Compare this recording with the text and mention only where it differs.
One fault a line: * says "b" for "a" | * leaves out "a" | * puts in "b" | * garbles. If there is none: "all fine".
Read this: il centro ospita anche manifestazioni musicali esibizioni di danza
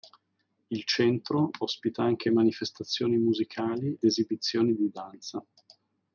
all fine